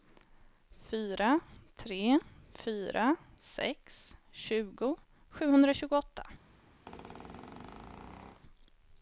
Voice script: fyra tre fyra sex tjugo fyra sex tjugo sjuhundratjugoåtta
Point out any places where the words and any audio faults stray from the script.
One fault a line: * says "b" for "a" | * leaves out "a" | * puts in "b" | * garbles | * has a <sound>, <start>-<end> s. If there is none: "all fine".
* leaves out "fyra sex tjugo"
* has a squeak, 6.9-8.4 s